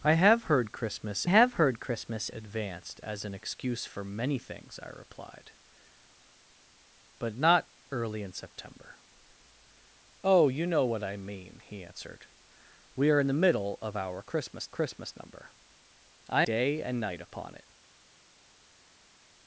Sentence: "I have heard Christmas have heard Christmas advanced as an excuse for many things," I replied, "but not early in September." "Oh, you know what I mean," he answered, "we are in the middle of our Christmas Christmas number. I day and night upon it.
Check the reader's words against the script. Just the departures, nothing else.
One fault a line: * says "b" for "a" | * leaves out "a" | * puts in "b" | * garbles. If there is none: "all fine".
all fine